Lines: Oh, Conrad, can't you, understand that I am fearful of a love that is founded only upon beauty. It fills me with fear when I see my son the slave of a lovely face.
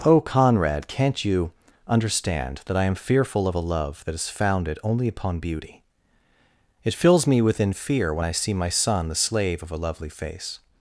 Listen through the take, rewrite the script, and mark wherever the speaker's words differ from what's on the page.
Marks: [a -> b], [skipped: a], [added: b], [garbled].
Oh, Conrad, can't you, understand that I am fearful of a love that is founded only upon beauty. It fills me [with -> within] fear when I see my son the slave of a lovely face.